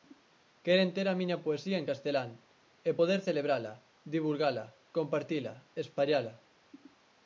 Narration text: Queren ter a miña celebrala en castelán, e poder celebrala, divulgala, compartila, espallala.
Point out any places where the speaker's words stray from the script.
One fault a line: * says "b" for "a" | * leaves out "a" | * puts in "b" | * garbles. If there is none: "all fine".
* says "poesía" for "celebrala"